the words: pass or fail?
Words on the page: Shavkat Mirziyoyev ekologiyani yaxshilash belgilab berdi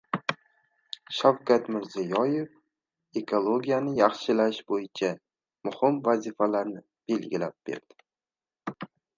fail